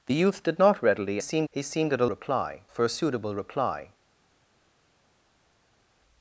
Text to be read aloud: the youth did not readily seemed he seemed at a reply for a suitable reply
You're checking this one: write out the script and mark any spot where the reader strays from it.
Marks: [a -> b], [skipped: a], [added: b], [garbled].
the youth did not readily seemed he seemed at a reply for a suitable reply